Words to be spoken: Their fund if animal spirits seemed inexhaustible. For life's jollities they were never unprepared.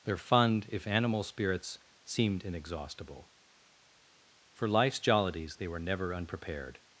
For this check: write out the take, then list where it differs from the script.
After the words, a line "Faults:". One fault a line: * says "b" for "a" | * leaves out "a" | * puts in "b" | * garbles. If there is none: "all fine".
Their fund if animal spirits seemed inexhaustible. For life's jollities they were never unprepared.
Faults:
all fine